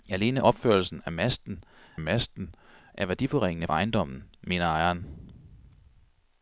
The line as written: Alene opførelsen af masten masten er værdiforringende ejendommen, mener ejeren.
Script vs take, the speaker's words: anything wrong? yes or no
no